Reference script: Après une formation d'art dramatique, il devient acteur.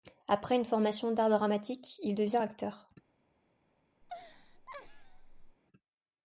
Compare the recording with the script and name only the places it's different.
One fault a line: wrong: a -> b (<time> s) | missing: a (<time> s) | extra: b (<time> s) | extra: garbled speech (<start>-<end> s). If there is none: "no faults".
no faults